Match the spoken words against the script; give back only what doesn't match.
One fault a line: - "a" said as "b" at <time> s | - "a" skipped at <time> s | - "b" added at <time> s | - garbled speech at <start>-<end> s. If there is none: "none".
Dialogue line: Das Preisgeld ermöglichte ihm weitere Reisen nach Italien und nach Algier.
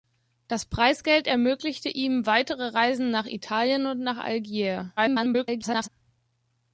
- garbled speech at 5.0-5.9 s